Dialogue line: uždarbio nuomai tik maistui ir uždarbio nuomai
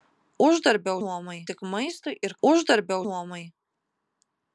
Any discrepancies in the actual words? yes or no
no